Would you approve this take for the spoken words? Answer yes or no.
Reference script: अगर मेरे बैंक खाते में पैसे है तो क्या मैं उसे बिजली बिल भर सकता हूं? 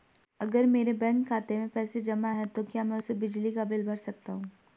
no